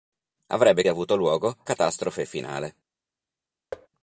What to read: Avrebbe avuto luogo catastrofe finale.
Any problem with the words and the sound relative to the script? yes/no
yes